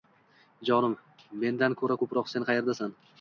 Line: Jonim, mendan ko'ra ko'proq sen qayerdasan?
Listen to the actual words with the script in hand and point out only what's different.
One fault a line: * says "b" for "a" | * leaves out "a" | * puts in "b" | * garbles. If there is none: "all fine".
all fine